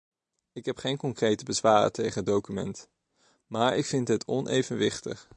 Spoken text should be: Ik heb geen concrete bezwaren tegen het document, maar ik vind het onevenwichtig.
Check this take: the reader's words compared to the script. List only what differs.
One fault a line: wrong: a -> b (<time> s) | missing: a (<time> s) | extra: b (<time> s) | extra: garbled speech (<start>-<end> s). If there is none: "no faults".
no faults